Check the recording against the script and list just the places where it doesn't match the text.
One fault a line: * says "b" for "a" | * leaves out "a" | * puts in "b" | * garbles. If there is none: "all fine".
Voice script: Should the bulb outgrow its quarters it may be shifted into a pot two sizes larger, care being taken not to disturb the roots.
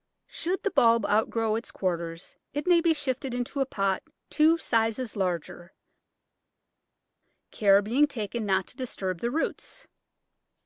all fine